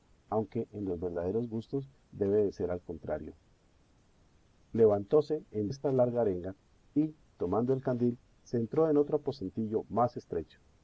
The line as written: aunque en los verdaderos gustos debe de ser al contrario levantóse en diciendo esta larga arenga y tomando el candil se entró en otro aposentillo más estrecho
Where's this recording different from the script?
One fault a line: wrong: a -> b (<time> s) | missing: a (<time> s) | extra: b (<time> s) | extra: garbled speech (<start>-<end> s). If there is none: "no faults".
missing: diciendo (5.7 s)